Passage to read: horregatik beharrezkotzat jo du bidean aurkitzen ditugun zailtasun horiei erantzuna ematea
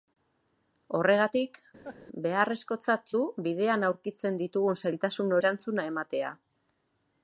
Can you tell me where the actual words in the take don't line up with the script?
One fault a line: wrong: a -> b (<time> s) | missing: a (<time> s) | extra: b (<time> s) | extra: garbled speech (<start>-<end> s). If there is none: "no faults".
missing: jo (3.1 s)
missing: horiei (5.4 s)